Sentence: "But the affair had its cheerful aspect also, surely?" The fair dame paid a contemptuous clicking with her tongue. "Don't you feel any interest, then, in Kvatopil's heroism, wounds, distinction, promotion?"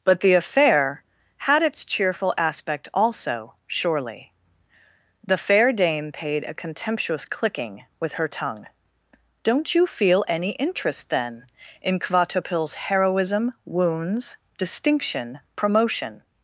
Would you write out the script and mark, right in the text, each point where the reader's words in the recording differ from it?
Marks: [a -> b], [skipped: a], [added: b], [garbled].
"But the affair had its cheerful aspect also, surely?" The fair dame paid a contemptuous clicking with her tongue. "Don't you feel any interest, then, in Kvatopil's heroism, wounds, distinction, promotion?"